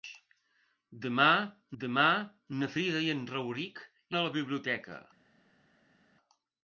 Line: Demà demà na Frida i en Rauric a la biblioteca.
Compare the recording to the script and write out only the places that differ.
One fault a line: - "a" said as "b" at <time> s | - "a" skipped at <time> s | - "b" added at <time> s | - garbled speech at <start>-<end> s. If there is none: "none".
none